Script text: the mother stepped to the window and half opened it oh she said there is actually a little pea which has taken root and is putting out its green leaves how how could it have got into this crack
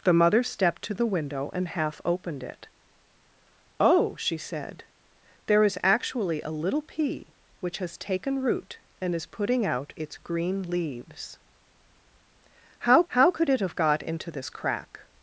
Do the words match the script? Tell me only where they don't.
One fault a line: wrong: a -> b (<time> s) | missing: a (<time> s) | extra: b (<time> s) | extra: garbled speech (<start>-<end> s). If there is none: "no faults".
no faults